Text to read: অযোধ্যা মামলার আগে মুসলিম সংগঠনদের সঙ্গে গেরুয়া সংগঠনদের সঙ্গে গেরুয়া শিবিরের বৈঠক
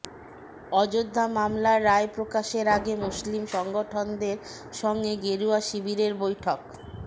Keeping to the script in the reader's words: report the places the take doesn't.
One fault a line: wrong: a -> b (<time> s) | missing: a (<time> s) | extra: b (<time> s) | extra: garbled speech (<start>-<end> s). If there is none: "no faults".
extra: রায় প্রকাশের (1.9 s)
missing: সংগঠনদের সঙ্গে গেরুয়া (5.6 s)